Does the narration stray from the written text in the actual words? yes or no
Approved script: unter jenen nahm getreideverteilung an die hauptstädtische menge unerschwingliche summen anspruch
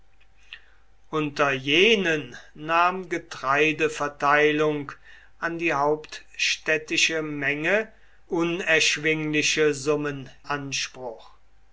no